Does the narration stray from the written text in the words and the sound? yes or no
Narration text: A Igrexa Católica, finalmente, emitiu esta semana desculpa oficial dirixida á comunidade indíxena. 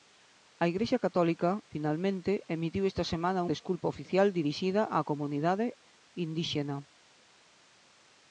no